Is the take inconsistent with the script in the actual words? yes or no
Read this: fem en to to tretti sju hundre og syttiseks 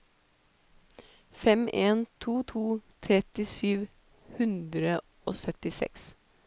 no